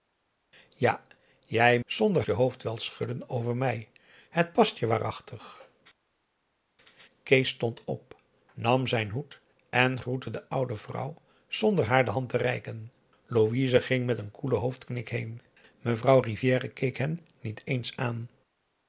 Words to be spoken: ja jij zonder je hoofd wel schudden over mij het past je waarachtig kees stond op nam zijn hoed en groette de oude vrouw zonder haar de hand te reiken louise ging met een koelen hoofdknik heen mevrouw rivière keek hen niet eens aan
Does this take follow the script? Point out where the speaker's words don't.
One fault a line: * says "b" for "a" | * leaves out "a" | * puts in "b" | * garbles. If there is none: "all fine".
all fine